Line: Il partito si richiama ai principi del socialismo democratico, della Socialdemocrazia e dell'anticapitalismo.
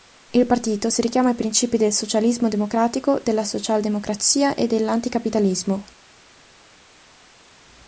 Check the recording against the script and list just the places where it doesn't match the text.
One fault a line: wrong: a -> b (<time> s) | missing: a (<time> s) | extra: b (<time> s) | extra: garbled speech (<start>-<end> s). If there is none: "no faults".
no faults